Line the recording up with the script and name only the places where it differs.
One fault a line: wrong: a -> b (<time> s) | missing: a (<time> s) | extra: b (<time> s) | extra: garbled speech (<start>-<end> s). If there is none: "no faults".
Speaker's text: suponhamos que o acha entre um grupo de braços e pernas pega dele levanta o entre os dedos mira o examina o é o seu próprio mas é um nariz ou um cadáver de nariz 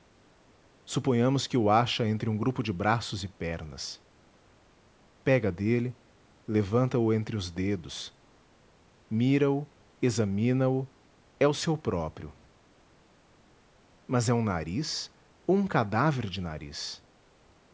no faults